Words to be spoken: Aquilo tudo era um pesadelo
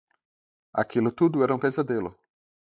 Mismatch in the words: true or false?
false